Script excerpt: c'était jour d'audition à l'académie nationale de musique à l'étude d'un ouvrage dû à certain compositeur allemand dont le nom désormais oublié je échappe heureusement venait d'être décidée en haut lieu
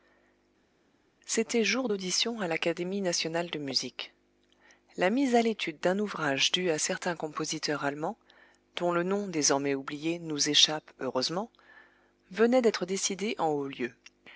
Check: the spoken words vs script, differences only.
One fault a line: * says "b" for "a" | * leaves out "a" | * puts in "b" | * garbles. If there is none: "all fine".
* puts in "la mise"
* says "nous" for "je"